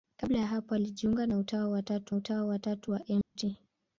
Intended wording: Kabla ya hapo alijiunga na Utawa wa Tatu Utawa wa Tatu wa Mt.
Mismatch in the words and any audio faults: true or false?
true